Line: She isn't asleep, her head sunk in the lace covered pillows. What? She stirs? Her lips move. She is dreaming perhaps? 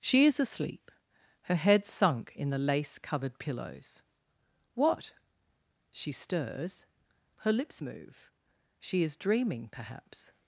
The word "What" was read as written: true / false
true